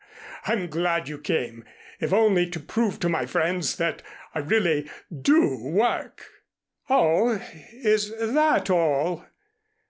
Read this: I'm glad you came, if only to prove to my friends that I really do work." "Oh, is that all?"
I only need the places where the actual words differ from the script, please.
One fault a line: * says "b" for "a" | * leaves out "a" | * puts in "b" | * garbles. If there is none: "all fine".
all fine